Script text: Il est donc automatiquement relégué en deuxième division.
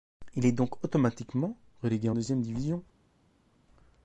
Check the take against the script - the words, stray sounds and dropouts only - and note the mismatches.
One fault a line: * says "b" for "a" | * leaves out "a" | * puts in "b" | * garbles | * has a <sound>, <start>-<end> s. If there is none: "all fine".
all fine